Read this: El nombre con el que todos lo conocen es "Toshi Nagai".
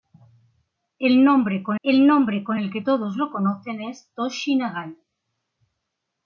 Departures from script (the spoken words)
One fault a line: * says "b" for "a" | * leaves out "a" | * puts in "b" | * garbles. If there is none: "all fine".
* puts in "nombre con el"